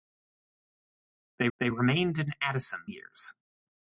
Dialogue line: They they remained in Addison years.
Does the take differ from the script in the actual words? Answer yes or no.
no